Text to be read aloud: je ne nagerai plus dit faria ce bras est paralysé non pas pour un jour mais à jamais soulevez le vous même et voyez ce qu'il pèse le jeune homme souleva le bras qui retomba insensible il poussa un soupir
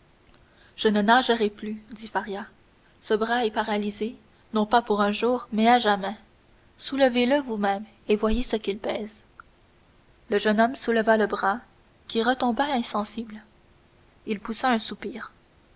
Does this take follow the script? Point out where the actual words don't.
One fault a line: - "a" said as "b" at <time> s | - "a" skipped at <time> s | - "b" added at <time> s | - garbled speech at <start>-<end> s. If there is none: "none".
none